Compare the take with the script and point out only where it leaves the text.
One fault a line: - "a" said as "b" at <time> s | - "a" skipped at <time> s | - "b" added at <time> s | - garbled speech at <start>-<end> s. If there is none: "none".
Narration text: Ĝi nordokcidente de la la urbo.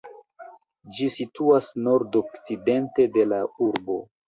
- "situas" added at 1.1 s
- "la" skipped at 3.5 s